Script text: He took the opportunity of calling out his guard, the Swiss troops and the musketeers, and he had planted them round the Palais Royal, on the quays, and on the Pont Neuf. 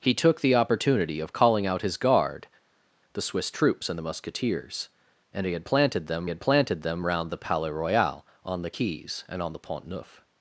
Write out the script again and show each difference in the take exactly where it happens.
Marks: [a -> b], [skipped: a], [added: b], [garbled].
He took the opportunity of calling out his guard, the Swiss troops and the musketeers, and he had planted them [added: had planted them] round the Palais Royal, on the quays, and on the Pont Neuf.